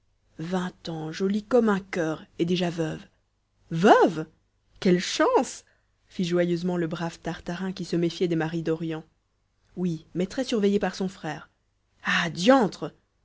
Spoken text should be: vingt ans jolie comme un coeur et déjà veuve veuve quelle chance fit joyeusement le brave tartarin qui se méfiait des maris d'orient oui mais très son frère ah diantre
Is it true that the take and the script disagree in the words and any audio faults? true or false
true